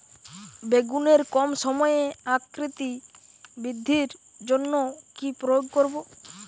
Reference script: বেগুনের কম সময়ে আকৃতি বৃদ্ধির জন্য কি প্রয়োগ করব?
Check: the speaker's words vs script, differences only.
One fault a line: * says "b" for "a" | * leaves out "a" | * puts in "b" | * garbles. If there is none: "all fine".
all fine